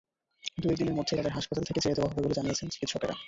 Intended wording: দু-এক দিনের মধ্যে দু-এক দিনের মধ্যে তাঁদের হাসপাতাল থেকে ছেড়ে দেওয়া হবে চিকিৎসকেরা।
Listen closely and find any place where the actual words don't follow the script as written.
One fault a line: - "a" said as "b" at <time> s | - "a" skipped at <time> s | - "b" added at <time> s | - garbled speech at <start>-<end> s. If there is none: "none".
- "দু-এক দিনের মধ্যে" skipped at 1.1 s
- "বলে জানিয়েছেন" added at 2.2 s